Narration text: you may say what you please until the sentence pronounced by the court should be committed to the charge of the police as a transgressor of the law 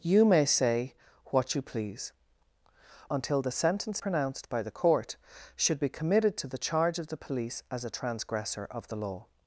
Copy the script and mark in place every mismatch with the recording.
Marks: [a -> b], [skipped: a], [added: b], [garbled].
you may say what you please until the sentence pronounced by the court should be committed to the charge of the police as a transgressor of the law